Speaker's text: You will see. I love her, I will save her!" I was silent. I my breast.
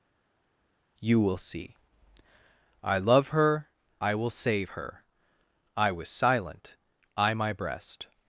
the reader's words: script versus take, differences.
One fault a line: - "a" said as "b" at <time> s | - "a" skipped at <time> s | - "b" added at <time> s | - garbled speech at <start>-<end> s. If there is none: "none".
none